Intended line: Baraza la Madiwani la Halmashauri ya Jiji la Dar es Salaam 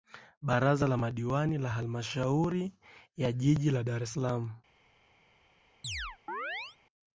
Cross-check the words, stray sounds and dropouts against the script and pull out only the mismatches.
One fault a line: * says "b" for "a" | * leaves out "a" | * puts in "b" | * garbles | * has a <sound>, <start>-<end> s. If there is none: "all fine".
* has a chirp, 5.8-6.8 s